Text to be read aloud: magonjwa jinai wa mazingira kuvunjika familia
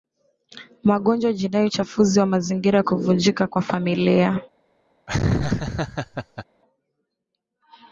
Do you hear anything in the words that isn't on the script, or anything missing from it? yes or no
yes